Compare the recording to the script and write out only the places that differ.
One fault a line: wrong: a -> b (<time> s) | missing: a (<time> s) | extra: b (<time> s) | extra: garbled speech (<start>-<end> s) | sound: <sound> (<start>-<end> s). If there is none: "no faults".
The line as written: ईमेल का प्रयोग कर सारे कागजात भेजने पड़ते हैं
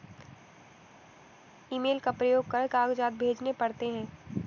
missing: सारे (2.7 s)